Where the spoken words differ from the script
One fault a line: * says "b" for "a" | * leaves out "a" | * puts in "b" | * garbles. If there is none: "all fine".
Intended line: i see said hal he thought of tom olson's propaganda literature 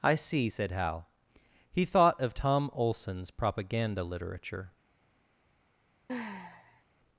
all fine